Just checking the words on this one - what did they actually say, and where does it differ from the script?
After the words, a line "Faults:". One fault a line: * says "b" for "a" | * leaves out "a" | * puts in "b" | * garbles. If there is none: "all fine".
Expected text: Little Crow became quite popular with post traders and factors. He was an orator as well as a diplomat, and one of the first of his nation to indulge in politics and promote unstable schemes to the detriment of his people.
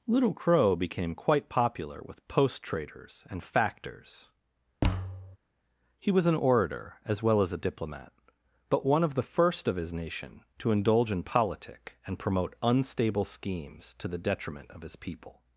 Little Crow became quite popular with post traders and factors. He was an orator as well as a diplomat, but one of the first of his nation to indulge in politic and promote unstable schemes to the detriment of his people.
Faults:
* says "but" for "and"
* says "politic" for "politics"